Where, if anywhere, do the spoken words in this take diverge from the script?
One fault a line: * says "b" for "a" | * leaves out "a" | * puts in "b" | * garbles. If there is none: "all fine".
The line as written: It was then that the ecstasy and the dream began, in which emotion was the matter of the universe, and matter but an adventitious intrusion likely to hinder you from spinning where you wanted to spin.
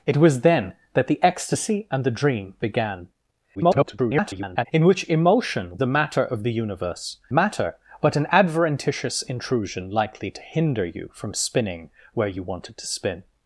* garbles
* leaves out "was"
* leaves out "and"